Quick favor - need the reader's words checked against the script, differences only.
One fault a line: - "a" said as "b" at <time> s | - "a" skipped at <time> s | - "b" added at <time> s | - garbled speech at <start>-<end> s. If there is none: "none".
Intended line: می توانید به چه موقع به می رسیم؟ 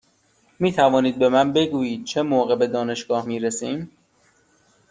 - "من بگویید" added at 1.3 s
- "دانشگاه" added at 2.7 s